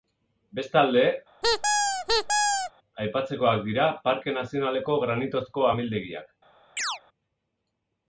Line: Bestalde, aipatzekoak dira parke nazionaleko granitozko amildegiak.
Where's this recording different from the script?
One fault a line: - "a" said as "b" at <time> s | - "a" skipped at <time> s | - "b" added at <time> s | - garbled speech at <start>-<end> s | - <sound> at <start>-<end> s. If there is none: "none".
- squeak at 1.4-2.7 s
- chirp at 6.8-7.0 s